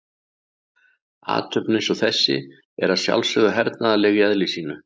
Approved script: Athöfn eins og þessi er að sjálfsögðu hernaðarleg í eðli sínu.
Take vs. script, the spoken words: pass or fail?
pass